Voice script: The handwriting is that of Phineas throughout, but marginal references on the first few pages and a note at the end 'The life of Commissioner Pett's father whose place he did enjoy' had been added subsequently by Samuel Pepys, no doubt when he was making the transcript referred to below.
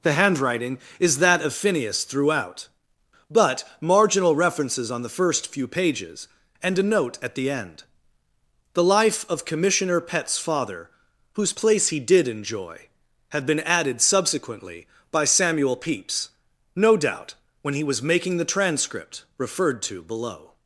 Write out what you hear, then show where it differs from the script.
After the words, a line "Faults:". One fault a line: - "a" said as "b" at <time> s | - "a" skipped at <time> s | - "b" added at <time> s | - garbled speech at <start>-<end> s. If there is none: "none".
The handwriting is that of Phineas throughout, but marginal references on the first few pages and a note at the end 'The life of Commissioner Pett's father whose place he did enjoy' had been added subsequently by Samuel Pepys, no doubt when he was making the transcript referred to below.
Faults:
none